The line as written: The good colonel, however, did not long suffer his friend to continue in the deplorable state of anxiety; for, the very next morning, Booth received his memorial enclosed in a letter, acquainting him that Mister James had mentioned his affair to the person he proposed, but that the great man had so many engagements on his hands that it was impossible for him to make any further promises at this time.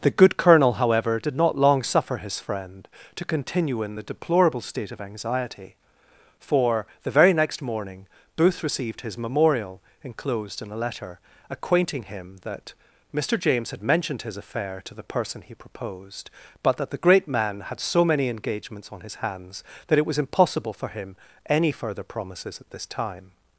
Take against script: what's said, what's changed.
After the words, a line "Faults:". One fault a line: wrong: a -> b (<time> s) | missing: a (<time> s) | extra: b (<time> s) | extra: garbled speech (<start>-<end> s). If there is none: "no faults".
The good colonel, however, did not long suffer his friend to continue in the deplorable state of anxiety; for, the very next morning, Booth received his memorial enclosed in a letter, acquainting him that Mister James had mentioned his affair to the person he proposed, but that the great man had so many engagements on his hands that it was impossible for him any further promises at this time.
Faults:
missing: to make (21.2 s)